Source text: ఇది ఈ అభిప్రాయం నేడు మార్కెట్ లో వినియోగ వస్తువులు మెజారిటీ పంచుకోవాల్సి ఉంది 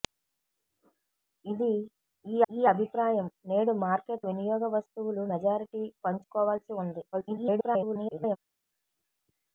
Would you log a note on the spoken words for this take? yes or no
yes